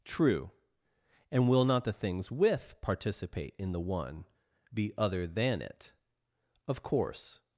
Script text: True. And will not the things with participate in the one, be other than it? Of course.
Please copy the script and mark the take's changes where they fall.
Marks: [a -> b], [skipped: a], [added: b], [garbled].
True. And will not the things with participate in the one, be other than it? Of course.